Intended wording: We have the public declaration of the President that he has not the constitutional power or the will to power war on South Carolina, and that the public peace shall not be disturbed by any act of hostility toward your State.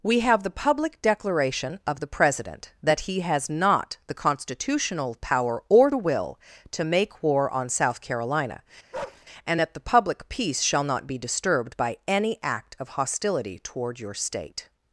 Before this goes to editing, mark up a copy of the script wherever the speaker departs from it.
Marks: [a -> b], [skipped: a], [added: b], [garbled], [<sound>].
We have the public declaration of the President that he has not the constitutional power or the will to [power -> make] war on South Carolina, [bark] and that the public peace shall not be disturbed by any act of hostility toward your State.